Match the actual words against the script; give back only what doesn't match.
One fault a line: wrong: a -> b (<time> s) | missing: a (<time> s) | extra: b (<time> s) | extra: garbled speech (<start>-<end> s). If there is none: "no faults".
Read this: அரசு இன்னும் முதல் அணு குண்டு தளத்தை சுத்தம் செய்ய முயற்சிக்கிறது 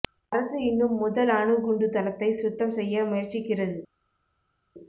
no faults